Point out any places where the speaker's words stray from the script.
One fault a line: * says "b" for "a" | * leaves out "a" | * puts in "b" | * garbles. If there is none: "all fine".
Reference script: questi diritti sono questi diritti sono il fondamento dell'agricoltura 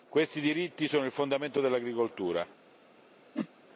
* leaves out "questi diritti sono"